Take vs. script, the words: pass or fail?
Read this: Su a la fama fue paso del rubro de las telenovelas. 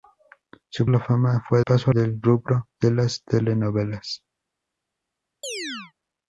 pass